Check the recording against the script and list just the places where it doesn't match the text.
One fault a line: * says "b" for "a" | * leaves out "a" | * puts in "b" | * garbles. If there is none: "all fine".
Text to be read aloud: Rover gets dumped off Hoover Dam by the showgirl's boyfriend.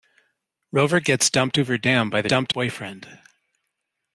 * leaves out "off"
* says "dumped" for "showgirl's"